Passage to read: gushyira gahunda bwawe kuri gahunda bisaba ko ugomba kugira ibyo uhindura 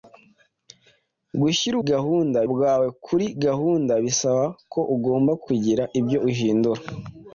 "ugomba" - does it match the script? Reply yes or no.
yes